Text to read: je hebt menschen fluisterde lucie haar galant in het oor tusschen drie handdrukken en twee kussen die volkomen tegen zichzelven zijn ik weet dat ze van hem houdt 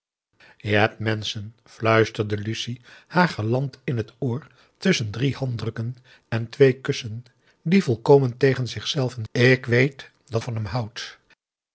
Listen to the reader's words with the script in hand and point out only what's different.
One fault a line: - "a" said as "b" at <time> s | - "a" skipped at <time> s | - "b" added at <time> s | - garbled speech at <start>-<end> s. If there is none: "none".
- "zijn" skipped at 9.2 s
- "ze" skipped at 10.4 s